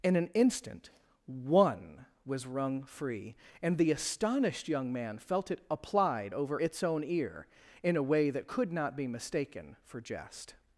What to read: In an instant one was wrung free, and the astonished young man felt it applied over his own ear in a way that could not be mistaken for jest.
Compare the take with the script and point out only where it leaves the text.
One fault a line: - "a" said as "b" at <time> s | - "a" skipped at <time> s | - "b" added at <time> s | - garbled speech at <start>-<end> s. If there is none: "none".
- "his" said as "its" at 6.6 s